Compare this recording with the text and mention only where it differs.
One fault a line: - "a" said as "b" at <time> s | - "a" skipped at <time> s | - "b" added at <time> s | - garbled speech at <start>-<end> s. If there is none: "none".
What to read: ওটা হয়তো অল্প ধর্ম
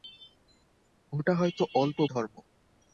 none